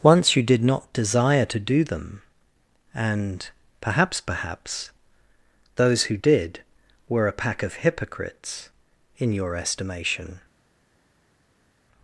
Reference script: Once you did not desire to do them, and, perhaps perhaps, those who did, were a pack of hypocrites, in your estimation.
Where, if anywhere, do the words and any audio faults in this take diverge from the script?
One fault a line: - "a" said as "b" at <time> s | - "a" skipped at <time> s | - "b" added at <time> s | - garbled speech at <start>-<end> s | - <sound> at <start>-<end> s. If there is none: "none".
none